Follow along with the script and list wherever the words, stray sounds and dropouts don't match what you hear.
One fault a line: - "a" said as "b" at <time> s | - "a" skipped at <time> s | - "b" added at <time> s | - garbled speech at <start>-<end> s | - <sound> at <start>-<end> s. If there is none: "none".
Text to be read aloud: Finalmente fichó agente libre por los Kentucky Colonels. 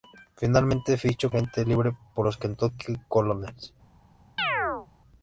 - chirp at 4.4-4.9 s